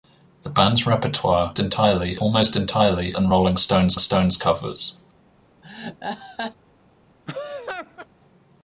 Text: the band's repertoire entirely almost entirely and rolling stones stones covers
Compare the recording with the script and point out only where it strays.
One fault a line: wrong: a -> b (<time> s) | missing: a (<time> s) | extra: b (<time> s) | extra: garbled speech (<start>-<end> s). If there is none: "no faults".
no faults